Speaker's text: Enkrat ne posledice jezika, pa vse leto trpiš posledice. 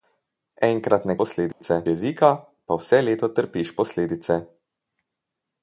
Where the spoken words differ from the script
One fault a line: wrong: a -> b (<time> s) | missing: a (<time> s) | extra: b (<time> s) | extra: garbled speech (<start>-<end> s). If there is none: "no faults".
no faults